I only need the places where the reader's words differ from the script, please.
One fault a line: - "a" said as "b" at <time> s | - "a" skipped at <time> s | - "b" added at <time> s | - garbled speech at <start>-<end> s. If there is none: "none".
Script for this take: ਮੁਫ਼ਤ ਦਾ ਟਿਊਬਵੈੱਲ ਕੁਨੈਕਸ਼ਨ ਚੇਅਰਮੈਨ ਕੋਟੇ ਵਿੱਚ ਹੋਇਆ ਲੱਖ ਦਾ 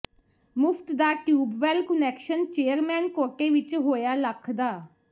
none